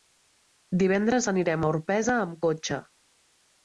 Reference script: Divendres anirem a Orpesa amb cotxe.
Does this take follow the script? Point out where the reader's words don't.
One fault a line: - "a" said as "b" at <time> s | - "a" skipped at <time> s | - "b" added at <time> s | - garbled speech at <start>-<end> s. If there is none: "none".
none